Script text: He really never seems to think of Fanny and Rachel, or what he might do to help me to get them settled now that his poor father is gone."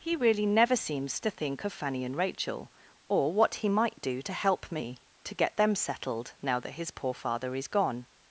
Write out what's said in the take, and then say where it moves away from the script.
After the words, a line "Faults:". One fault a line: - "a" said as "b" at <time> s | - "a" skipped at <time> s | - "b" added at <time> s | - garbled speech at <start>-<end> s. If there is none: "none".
He really never seems to think of Fanny and Rachel, or what he might do to help me to get them settled now that his poor father is gone."
Faults:
none